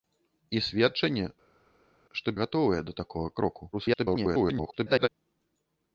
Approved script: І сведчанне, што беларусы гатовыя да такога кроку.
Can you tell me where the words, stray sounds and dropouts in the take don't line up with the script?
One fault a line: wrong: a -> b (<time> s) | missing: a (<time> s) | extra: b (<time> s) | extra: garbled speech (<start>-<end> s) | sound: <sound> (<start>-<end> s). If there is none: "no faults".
missing: беларусы (2.4 s)
extra: garbled speech (3.7-5.1 s)